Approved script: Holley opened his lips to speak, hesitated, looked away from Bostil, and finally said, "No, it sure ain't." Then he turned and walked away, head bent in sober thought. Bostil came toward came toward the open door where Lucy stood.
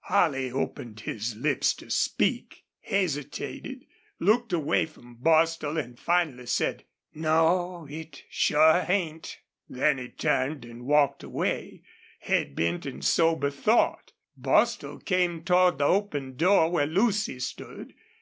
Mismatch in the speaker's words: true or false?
true